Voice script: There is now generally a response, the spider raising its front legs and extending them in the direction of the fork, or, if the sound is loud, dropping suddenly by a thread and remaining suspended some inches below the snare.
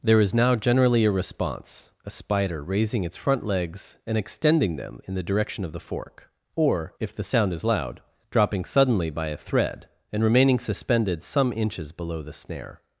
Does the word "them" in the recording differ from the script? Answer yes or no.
no